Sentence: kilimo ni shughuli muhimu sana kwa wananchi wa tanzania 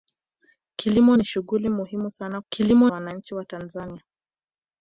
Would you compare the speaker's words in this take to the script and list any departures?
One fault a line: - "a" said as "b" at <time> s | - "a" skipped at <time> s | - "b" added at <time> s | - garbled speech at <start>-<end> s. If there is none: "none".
- "kwa" said as "kilimo" at 2.5 s